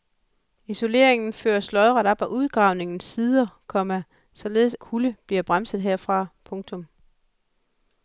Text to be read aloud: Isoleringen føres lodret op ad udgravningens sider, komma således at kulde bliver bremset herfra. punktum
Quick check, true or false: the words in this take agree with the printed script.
false